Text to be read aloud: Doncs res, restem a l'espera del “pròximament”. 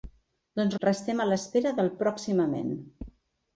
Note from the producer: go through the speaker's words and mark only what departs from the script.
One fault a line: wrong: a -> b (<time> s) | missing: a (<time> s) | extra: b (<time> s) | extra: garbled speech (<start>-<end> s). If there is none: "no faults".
missing: res (0.8 s)